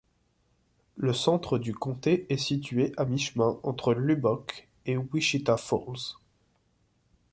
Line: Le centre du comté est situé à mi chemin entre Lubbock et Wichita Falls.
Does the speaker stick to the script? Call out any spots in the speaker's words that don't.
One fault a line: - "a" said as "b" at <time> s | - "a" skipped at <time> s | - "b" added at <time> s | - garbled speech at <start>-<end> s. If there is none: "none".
none